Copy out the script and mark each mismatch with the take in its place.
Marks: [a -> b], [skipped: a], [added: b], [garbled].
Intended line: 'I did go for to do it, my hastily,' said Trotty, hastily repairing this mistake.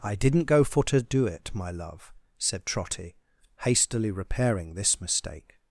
'I [did -> didn't] go for to do it, my [hastily,' -> love] said Trotty, hastily repairing this mistake.